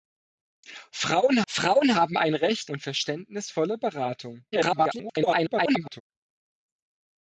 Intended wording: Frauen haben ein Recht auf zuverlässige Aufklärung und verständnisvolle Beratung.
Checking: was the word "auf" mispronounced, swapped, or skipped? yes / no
yes